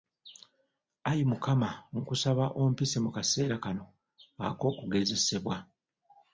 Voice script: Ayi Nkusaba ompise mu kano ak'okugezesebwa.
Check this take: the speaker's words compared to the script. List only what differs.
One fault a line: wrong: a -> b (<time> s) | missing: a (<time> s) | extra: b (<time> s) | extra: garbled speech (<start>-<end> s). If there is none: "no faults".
extra: Mukama (1.3 s)
extra: kaseera (3.1 s)